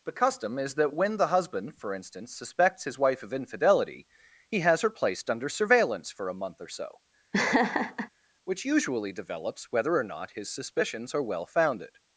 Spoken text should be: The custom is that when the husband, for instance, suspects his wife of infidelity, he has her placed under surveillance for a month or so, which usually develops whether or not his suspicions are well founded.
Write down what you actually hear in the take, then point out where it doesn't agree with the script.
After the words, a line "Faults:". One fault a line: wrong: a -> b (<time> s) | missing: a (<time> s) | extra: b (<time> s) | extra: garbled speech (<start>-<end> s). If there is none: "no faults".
The custom is that when the husband, for instance, suspects his wife of infidelity, he has her placed under surveillance for a month or so, which usually develops whether or not his suspicions are well founded.
Faults:
no faults